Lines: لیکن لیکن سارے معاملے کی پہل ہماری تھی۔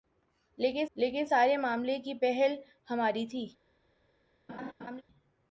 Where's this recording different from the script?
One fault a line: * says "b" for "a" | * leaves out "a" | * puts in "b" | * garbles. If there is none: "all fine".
all fine